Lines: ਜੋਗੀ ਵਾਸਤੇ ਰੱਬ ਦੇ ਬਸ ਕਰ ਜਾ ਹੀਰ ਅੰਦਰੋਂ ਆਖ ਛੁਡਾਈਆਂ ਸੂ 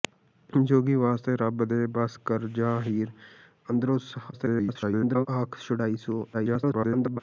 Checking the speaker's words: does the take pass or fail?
fail